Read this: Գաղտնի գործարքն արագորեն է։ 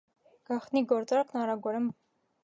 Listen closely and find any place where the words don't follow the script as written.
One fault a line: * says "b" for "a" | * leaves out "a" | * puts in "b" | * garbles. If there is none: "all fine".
all fine